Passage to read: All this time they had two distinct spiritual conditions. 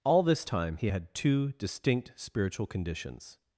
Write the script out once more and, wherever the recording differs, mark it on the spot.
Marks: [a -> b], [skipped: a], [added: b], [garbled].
All this time [they -> he] had two distinct spiritual conditions.